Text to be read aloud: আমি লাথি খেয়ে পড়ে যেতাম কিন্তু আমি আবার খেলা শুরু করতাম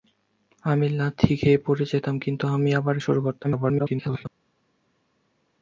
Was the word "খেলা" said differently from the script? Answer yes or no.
yes